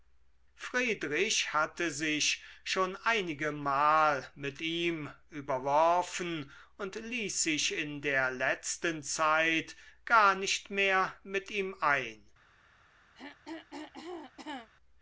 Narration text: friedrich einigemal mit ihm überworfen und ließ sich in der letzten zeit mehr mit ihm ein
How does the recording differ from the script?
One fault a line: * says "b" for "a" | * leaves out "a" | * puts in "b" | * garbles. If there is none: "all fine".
* puts in "hatte sich schon"
* puts in "gar nicht"